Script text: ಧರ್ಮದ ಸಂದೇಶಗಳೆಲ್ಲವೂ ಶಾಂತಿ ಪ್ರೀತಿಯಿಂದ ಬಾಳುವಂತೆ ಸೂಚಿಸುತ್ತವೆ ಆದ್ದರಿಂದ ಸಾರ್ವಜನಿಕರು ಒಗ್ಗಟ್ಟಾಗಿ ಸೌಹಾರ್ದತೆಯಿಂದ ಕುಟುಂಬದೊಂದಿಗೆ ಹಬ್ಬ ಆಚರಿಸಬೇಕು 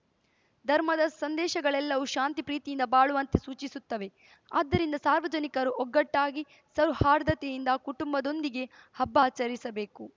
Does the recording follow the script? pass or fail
pass